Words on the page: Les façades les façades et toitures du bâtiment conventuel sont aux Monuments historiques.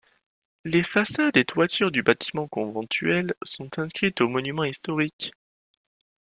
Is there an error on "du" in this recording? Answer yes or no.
no